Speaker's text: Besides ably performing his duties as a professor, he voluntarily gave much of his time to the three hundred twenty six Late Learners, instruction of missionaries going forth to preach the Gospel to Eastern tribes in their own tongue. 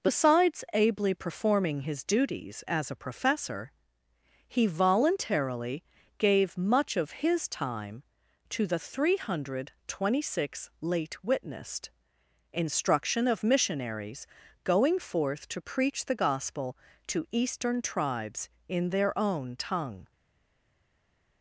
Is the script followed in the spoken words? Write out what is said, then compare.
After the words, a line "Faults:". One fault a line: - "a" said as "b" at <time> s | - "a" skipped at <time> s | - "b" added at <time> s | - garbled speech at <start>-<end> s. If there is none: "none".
Besides ably performing his duties as a professor, he voluntarily gave much of his time to the three hundred twenty six Late Witnessed, instruction of missionaries going forth to preach the Gospel to Eastern tribes in their own tongue.
Faults:
- "Learners" said as "Witnessed" at 11.2 s